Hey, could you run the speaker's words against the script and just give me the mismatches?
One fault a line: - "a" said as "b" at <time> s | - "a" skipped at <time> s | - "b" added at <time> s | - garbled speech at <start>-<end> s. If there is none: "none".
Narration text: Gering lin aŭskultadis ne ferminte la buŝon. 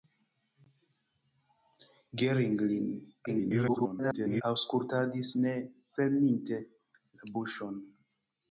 - garbled speech at 3.3-4.4 s